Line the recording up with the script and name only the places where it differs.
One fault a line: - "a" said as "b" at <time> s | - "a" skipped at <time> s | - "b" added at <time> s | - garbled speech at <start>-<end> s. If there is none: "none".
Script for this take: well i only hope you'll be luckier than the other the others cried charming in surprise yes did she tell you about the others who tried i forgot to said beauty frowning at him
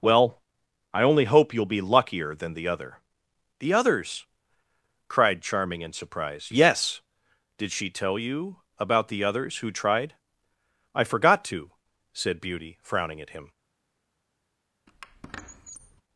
none